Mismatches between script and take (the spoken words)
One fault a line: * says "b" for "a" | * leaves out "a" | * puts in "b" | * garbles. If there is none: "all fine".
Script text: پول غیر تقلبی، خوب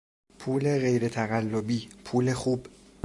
* puts in "پول"